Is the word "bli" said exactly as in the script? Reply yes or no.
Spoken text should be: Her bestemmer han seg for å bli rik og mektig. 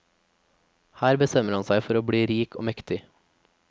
yes